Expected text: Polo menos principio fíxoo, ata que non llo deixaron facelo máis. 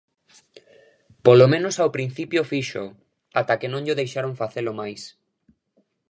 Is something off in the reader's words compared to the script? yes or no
yes